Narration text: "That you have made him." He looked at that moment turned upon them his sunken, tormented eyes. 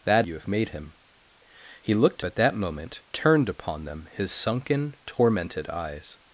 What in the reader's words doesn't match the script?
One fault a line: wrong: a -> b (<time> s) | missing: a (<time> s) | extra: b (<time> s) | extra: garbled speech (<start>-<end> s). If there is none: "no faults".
no faults